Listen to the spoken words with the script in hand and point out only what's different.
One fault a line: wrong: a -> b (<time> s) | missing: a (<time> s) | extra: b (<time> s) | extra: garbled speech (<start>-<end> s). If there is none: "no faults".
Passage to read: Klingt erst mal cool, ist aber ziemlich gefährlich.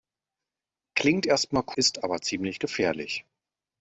missing: cool (1.6 s)